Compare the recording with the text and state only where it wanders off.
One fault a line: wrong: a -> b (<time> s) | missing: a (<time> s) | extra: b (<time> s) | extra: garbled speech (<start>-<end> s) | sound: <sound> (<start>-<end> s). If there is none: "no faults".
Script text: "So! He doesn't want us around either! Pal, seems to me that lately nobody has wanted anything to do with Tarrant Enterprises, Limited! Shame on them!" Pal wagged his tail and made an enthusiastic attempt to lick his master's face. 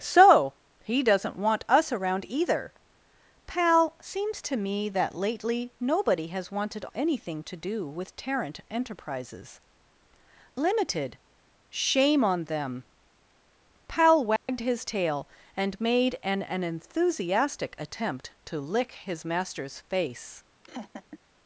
sound: dropout (14.4-14.5 s)
extra: an (16.4 s)
sound: laugh (20.6-21.2 s)